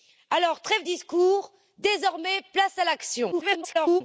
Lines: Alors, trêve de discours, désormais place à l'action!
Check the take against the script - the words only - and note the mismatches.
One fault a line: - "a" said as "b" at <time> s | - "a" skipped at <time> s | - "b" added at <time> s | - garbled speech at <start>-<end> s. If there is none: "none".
- "de" skipped at 0.8 s
- garbled speech at 3.3-4.0 s